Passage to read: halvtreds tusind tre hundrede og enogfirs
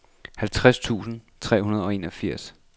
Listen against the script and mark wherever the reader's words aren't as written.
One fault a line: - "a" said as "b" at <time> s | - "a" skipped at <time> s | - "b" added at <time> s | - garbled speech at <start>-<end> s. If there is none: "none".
none